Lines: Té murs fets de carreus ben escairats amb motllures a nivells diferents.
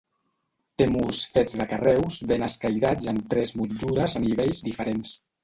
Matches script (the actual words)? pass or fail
fail